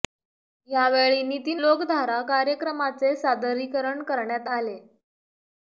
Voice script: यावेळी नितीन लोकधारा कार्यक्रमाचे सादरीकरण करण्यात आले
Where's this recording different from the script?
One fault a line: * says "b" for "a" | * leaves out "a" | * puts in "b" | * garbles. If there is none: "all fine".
all fine